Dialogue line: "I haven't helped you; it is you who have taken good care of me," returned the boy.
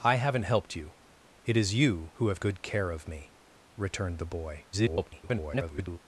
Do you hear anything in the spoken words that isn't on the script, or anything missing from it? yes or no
yes